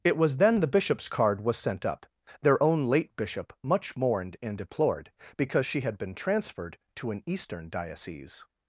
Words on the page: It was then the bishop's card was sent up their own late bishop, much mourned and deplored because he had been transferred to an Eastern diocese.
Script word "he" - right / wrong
wrong